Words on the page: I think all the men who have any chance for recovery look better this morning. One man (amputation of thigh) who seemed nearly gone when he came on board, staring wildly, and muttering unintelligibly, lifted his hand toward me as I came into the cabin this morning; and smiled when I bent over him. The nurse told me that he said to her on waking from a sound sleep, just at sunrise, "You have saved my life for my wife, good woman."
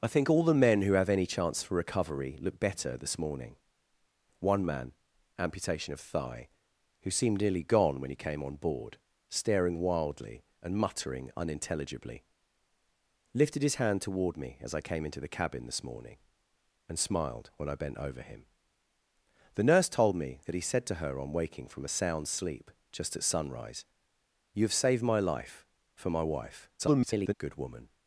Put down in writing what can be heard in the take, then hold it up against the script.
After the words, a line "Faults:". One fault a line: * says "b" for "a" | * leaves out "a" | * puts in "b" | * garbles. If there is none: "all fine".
I think all the men who have any chance for recovery look better this morning. One man (amputation of thigh) who seemed nearly gone when he came on board, staring wildly, and muttering unintelligibly, lifted his hand toward me as I came into the cabin this morning; and smiled when I bent over him. The nurse told me that he said to her on waking from a sound sleep, just at sunrise, "You have saved my life for my wife, [garbled] good woman."
Faults:
* garbles